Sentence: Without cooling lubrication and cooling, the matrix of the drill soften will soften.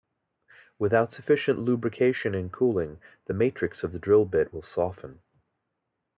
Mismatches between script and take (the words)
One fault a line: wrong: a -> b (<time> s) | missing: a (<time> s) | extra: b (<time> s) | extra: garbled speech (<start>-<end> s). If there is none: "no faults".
wrong: cooling -> sufficient (1.1 s)
wrong: soften -> bit (4.2 s)